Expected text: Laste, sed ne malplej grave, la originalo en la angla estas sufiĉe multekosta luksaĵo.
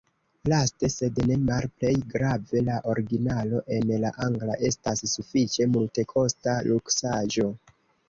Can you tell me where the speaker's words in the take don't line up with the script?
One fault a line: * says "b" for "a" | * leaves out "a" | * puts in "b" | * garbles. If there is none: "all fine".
all fine